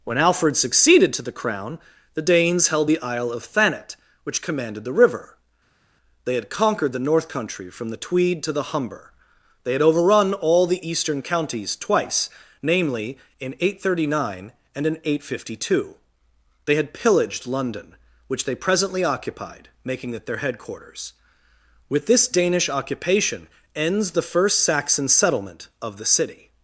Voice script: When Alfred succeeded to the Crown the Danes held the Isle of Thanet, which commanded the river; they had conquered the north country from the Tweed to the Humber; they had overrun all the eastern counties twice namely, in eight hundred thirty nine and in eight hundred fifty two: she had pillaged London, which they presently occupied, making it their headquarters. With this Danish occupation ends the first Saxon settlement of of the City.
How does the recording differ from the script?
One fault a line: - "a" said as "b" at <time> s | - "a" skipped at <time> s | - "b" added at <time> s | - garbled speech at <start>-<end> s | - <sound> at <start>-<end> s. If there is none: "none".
- "she" said as "they" at 16.6 s
- "of" skipped at 26.0 s